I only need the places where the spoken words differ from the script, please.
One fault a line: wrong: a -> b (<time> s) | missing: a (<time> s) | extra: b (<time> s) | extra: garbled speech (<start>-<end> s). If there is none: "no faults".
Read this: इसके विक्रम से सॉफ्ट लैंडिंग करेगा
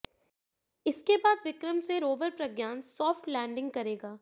extra: बाद (1.2 s)
extra: रोवर प्रज्ञान (2.0 s)